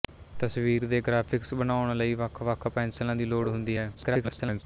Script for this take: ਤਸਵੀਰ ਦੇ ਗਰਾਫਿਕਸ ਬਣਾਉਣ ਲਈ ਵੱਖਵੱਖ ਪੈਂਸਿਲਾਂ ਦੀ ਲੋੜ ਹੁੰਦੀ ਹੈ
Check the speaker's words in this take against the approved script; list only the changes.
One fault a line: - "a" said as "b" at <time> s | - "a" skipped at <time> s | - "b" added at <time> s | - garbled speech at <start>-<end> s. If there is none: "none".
- garbled speech at 3.9-4.6 s